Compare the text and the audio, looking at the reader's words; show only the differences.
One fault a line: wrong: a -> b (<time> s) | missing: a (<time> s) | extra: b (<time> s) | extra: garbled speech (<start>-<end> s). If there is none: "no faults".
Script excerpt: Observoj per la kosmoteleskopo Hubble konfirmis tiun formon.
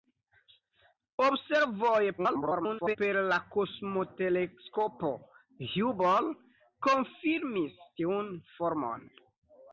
extra: garbled speech (2.2-3.0 s)